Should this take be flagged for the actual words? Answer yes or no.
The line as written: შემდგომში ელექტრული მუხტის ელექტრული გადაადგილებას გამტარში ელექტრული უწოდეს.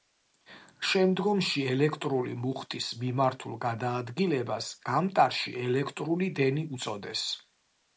yes